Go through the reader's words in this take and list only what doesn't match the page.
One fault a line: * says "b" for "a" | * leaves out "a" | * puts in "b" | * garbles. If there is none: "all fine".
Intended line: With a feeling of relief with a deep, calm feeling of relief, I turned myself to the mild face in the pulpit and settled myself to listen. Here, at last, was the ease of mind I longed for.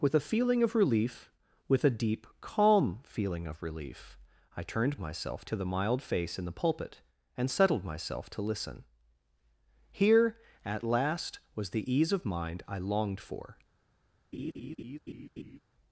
all fine